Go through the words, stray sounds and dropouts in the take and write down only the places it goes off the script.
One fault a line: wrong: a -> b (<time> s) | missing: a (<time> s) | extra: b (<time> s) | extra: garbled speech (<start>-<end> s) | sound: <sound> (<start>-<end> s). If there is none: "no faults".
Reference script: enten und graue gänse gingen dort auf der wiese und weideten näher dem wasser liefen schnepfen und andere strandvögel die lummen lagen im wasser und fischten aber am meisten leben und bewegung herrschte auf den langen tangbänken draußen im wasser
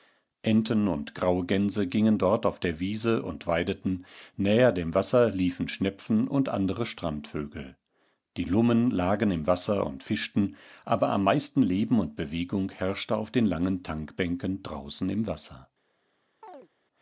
sound: chirp (16.4-16.7 s)